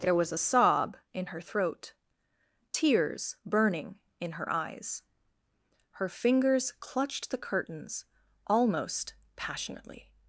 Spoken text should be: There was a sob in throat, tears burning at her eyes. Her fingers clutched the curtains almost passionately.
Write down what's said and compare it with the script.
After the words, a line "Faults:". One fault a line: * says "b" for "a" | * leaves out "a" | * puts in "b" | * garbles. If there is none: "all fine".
There was a sob in her throat, tears burning in her eyes. Her fingers clutched the curtains almost passionately.
Faults:
* puts in "her"
* says "in" for "at"